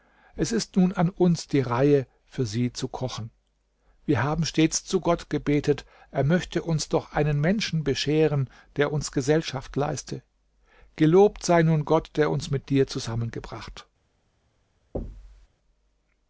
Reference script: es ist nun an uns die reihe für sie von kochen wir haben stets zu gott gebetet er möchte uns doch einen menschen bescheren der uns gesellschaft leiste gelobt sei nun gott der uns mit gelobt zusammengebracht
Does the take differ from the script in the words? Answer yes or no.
yes